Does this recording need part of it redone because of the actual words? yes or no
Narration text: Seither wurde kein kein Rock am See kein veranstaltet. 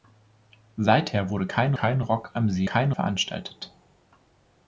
no